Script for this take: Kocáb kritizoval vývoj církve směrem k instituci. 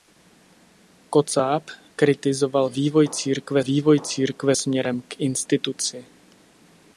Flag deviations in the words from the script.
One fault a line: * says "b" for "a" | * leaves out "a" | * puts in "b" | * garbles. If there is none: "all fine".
* puts in "vývoj církve"